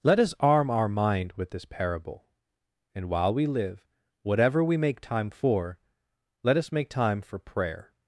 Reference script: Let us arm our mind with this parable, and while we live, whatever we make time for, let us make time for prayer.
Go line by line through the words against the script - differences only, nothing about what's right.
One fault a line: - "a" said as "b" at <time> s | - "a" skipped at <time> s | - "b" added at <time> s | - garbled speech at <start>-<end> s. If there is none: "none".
none